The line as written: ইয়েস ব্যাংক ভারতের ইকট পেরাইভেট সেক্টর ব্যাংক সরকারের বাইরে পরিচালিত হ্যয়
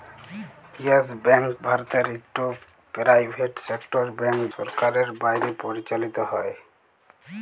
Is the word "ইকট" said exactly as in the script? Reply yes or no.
yes